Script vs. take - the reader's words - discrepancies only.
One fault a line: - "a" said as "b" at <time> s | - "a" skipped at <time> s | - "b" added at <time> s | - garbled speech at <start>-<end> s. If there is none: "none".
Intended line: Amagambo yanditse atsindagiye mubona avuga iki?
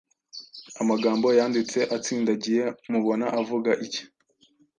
none